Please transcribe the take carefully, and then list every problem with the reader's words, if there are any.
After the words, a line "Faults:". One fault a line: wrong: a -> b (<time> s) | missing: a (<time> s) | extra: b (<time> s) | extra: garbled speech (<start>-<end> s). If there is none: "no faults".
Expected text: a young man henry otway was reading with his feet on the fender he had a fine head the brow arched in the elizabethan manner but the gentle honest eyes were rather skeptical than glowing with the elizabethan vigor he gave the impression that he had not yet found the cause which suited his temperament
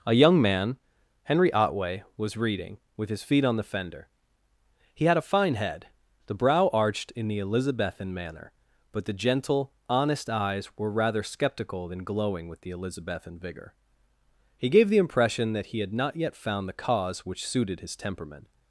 a young man henry otway was reading with his feet on the fender he had a fine head the brow arched in the elizabethan manner but the gentle honest eyes were rather skeptical than glowing with the elizabethan vigor he gave the impression that he had not yet found the cause which suited his temperament
Faults:
no faults